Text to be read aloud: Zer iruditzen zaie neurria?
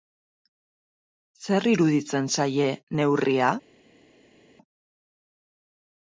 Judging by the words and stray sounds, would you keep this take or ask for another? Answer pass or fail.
pass